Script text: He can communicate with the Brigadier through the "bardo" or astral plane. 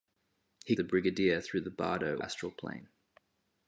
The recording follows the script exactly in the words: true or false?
false